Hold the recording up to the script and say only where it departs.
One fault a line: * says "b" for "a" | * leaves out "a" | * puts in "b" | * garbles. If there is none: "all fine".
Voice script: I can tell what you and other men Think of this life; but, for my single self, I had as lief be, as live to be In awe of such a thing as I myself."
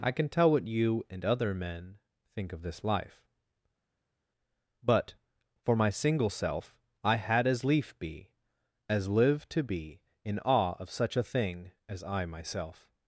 all fine